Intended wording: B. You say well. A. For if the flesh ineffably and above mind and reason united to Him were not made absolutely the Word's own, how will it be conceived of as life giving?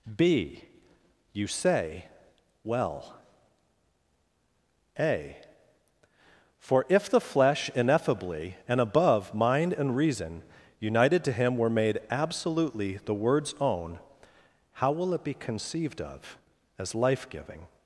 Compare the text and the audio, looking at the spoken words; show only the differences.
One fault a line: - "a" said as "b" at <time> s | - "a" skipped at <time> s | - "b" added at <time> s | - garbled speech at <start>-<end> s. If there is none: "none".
- "not" skipped at 11.7 s